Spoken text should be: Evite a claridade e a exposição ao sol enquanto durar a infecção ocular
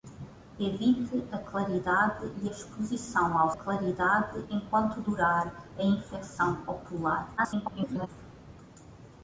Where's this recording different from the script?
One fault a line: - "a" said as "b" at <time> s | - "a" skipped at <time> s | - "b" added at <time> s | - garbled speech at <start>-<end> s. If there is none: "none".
- "sol" said as "claridade" at 3.5 s
- garbled speech at 7.4-8.1 s